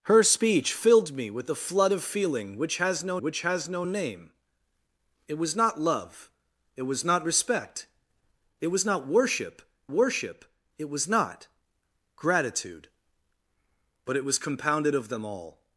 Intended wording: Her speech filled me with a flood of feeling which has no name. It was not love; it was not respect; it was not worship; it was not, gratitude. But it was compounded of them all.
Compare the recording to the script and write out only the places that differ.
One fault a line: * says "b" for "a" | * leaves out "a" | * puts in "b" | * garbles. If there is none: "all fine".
* puts in "which has no"
* puts in "worship"